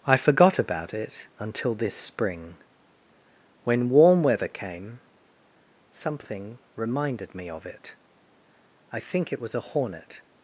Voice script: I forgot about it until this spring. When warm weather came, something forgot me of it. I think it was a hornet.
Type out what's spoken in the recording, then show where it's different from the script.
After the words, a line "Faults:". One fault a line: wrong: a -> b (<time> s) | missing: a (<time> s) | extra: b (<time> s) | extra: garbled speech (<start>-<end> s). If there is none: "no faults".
I forgot about it until this spring. When warm weather came, something reminded me of it. I think it was a hornet.
Faults:
wrong: forgot -> reminded (6.8 s)